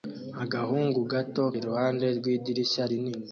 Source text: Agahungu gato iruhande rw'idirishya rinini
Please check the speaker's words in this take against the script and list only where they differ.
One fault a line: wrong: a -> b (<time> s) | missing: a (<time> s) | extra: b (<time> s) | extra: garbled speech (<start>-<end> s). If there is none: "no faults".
no faults